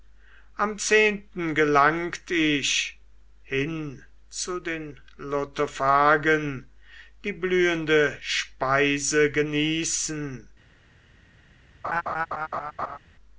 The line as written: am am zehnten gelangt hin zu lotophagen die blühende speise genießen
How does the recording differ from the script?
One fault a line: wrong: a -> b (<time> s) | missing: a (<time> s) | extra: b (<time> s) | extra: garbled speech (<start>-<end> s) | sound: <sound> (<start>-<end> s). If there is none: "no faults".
missing: am (0.8 s)
extra: ich (2.3 s)
extra: den (4.6 s)
sound: laugh (11.8-13.0 s)